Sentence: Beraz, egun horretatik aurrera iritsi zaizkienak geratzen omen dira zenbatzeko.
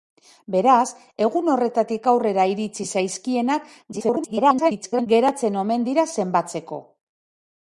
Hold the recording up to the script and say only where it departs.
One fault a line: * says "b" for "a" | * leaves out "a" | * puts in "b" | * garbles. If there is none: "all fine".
* garbles